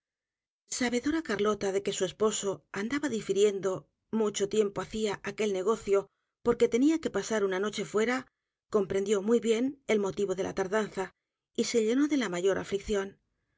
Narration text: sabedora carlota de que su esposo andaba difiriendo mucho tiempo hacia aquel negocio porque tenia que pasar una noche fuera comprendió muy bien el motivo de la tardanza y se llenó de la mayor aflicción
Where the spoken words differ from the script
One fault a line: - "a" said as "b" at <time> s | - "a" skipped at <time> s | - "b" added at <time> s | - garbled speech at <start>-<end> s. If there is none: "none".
none